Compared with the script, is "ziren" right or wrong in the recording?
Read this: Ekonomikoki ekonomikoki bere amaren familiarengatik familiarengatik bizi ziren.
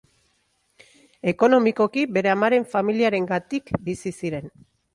right